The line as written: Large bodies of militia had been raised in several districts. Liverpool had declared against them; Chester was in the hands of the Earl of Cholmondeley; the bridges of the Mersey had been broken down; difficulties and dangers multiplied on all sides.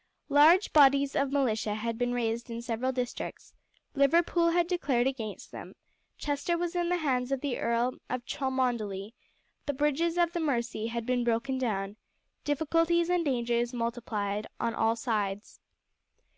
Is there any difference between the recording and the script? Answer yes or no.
no